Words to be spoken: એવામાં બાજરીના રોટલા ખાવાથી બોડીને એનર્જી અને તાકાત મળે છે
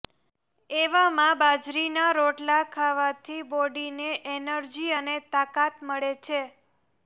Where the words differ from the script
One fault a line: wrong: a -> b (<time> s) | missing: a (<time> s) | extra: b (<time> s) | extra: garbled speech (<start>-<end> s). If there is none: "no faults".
no faults